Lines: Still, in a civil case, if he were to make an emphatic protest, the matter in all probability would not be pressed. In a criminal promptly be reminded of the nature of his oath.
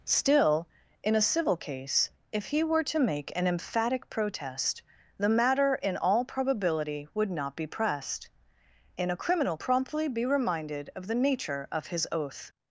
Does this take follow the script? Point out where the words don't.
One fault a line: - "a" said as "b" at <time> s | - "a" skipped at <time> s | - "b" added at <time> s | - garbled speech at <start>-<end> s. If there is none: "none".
none